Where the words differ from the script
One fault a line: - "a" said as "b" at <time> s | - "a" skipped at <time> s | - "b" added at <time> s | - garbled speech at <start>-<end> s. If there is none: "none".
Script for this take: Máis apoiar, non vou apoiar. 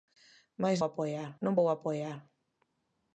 none